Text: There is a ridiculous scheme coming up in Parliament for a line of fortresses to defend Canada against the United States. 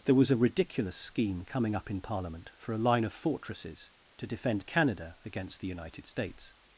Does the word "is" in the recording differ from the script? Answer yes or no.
yes